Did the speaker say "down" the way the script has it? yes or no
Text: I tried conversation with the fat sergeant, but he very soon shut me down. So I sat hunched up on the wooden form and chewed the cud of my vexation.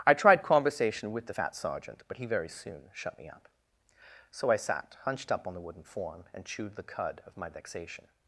no